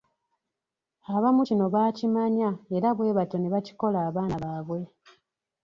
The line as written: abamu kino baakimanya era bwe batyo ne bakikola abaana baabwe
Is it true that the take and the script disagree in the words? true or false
false